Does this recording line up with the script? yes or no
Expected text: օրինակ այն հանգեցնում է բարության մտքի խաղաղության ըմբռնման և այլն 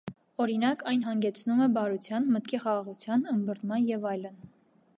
yes